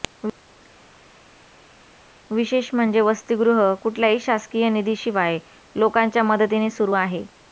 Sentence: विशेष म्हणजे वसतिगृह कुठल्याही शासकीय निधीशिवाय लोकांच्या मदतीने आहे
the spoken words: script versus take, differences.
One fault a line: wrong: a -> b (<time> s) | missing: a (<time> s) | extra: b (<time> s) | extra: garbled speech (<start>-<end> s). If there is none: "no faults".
extra: सुरू (6.7 s)